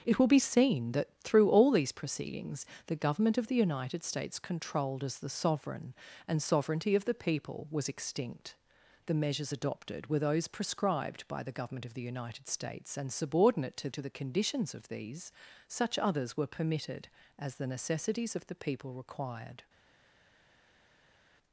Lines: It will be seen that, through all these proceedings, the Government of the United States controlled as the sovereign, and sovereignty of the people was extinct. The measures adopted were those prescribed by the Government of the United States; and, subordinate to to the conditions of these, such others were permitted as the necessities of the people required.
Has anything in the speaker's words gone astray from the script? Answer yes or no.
no